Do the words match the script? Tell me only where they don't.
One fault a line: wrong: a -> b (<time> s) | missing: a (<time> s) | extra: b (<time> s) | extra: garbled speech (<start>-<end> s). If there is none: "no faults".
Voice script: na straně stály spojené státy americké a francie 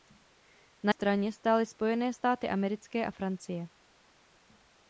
no faults